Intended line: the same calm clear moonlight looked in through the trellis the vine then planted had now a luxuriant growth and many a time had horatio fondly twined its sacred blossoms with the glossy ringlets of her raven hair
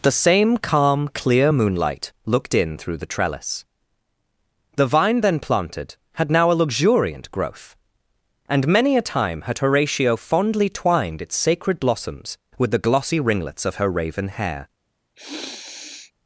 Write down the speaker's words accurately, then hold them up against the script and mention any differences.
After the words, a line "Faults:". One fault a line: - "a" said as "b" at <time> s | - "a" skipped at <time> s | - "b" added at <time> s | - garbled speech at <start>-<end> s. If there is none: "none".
the same calm clear moonlight looked in through the trellis the vine then planted had now a luxuriant growth and many a time had horatio fondly twined its sacred blossoms with the glossy ringlets of her raven hair
Faults:
none